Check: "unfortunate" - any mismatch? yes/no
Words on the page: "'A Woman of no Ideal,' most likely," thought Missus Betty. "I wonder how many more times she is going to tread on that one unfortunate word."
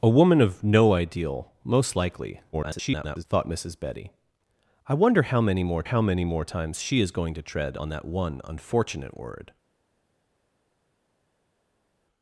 no